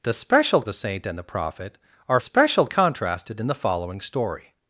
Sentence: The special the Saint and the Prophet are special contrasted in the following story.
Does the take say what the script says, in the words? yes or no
yes